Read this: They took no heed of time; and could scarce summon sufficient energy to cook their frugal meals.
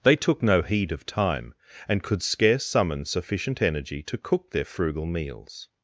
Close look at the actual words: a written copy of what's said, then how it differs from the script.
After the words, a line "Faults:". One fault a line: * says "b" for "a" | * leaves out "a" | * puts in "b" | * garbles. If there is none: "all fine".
They took no heed of time; and could scarce summon sufficient energy to cook their frugal meals.
Faults:
all fine